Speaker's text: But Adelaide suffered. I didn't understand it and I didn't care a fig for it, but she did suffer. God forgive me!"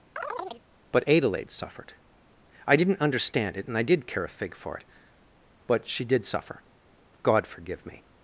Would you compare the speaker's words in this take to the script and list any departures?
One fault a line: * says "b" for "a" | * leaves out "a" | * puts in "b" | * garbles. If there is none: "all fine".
* says "did" for "didn't"